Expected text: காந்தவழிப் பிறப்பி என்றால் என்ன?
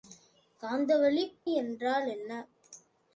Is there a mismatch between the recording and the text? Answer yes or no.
yes